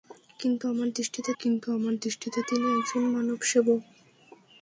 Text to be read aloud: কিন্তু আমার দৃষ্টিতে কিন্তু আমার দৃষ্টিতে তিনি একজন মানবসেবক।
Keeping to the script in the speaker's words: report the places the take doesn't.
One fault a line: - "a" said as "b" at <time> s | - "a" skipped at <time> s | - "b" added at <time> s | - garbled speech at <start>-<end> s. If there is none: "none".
none